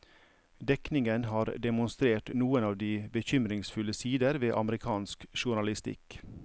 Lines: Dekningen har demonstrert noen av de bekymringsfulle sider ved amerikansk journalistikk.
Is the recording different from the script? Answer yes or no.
no